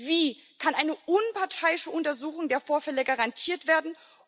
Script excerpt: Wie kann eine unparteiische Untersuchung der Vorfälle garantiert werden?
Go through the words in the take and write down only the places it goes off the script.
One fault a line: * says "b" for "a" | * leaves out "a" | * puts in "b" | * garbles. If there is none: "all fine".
all fine